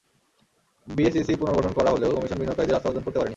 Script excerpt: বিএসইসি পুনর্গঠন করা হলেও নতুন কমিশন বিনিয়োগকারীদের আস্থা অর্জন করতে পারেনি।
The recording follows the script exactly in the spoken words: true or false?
false